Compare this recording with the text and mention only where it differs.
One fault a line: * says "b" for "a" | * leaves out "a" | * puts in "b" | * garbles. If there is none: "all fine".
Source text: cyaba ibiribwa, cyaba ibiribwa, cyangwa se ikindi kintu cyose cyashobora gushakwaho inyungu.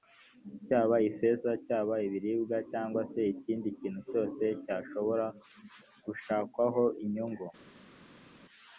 * says "ifeza" for "ibiribwa"